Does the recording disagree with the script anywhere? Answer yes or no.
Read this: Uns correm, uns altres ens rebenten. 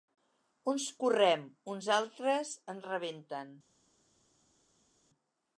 no